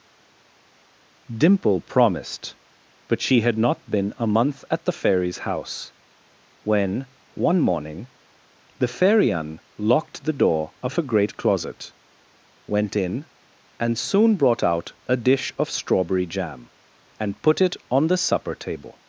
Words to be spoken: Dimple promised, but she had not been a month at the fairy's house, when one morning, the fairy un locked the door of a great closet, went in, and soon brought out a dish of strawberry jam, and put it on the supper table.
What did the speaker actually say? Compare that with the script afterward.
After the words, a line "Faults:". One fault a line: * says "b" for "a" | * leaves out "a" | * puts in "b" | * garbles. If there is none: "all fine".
Dimple promised, but she had not been a month at the fairy's house, when one morning, the fairy un locked the door of a great closet, went in, and soon brought out a dish of strawberry jam, and put it on the supper table.
Faults:
all fine